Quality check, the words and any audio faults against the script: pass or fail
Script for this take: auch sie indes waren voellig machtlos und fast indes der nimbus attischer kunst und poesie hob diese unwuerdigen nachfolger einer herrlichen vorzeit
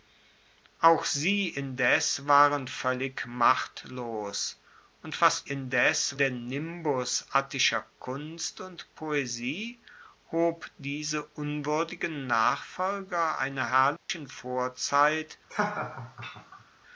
fail